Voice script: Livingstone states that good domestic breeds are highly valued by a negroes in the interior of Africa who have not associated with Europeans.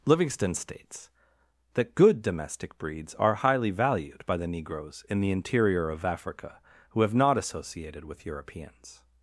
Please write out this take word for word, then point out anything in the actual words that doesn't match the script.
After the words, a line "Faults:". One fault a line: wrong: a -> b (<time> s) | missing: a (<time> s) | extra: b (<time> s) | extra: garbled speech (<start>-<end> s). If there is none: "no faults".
Livingstone states that good domestic breeds are highly valued by the negroes in the interior of Africa who have not associated with Europeans.
Faults:
wrong: a -> the (4.4 s)